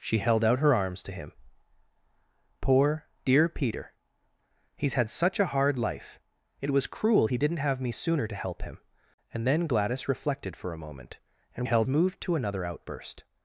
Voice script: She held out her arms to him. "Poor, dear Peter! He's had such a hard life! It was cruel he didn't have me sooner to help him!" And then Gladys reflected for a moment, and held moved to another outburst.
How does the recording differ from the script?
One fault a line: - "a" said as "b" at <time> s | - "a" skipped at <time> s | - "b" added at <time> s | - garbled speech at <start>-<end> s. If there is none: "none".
none